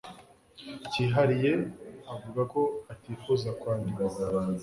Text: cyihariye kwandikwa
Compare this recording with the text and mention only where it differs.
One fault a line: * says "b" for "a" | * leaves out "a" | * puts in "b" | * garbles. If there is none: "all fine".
* puts in "avuga ko atifuza"